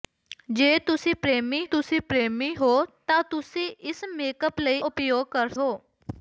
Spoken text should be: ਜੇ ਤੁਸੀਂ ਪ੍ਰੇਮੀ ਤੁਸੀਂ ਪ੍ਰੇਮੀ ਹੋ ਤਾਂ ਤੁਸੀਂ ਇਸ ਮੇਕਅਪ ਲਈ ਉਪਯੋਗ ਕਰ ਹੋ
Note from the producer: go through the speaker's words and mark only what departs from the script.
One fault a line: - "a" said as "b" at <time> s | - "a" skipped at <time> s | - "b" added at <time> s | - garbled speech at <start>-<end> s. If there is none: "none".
none